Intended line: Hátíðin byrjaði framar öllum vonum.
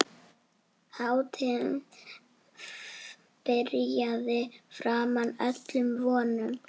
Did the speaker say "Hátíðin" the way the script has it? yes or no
yes